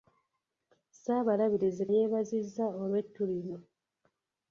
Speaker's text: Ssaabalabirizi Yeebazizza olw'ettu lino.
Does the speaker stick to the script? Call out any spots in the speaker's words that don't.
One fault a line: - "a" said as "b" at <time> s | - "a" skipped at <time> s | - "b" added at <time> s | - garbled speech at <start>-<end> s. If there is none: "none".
none